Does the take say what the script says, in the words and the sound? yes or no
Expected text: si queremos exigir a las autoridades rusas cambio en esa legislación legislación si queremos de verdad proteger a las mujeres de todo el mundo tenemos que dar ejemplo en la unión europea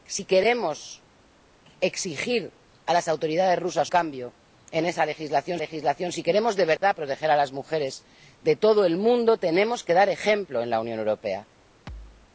no